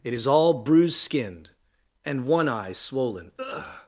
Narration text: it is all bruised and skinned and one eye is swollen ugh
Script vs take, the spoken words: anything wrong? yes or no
yes